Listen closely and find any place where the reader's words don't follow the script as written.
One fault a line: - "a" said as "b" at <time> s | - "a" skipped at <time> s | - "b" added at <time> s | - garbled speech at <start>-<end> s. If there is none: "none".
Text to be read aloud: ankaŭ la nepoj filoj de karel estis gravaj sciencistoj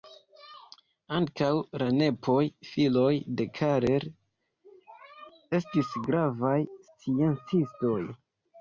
none